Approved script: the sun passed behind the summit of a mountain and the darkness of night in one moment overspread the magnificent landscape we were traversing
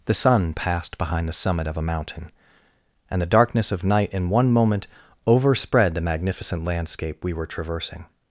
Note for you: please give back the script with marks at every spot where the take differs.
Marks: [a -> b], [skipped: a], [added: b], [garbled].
the sun passed behind the summit of a mountain and the darkness of night in one moment overspread the magnificent landscape we were traversing